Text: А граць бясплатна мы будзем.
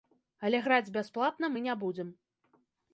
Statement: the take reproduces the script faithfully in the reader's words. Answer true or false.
false